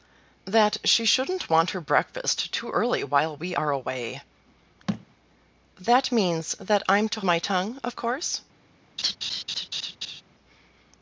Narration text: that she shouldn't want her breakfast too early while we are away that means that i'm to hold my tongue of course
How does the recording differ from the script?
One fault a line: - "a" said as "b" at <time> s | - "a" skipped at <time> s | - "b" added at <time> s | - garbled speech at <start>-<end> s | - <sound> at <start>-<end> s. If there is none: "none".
- thud at 4.9-5.1 s
- "hold" skipped at 7.2 s
- laugh at 9.0-10.2 s